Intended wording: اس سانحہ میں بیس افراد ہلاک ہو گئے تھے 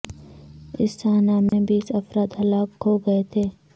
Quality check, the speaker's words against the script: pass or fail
pass